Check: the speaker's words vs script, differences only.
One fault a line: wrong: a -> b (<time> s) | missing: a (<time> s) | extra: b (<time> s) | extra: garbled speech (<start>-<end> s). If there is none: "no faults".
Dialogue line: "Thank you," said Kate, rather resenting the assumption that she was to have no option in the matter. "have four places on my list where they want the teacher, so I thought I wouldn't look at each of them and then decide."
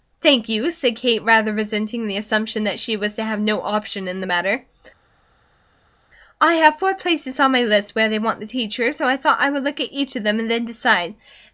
extra: I (6.4 s)
wrong: wouldn't -> would (9.5 s)